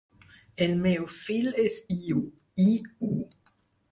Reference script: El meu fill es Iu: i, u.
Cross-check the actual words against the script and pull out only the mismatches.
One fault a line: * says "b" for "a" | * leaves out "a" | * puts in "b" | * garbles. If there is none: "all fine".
all fine